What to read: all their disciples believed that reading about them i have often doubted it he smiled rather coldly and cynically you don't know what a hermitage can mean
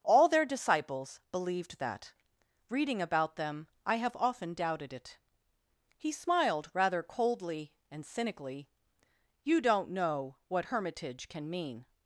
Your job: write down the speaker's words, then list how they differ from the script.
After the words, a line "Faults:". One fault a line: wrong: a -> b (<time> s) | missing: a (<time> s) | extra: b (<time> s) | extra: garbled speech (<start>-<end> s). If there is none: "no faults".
all their disciples believed that reading about them i have often doubted it he smiled rather coldly and cynically you don't know what hermitage can mean
Faults:
missing: a (10.7 s)